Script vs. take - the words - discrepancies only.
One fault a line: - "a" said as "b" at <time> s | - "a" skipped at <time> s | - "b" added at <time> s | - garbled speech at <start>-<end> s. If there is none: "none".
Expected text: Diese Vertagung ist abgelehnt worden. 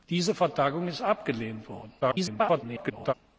- garbled speech at 2.0-3.1 s